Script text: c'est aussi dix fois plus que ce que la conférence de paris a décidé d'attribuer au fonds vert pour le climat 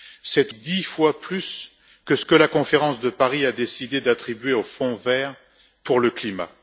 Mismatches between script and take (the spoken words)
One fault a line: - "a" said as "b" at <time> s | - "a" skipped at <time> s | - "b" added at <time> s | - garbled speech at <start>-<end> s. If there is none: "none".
- "aussi" skipped at 0.5 s